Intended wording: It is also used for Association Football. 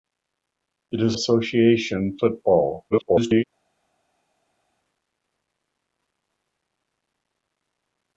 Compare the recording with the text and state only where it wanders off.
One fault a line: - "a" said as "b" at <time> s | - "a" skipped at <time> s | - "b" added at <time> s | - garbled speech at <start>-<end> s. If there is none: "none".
- "also used for" skipped at 1.2 s
- garbled speech at 2.9-3.4 s